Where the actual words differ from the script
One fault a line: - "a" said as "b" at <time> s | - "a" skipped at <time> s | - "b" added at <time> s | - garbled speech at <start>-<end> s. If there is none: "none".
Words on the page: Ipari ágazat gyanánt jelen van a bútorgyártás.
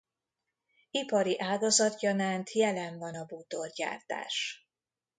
none